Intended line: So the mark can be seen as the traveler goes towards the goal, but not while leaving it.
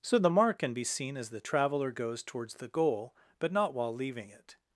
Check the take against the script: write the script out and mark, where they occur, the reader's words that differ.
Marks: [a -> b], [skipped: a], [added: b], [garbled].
So the mark can be seen as the traveler goes towards the goal, but not while leaving it.